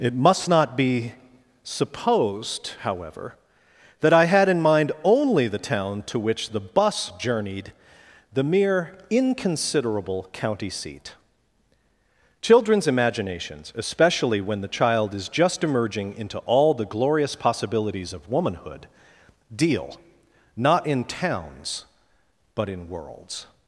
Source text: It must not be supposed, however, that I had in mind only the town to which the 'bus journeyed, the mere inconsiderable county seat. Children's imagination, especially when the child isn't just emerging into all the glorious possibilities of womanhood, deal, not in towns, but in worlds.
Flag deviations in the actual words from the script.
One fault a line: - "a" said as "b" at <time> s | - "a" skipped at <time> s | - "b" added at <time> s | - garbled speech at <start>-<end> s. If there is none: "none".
- "imagination" said as "imaginations" at 12.9 s
- "isn't" said as "is" at 15.1 s